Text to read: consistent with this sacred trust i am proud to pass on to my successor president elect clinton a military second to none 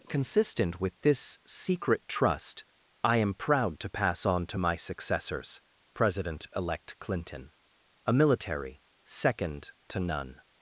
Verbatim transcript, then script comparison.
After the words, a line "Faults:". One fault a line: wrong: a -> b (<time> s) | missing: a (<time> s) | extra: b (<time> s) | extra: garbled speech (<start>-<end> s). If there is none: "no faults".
consistent with this secret trust i am proud to pass on to my successors president elect clinton a military second to none
Faults:
wrong: sacred -> secret (1.5 s)
wrong: successor -> successors (4.8 s)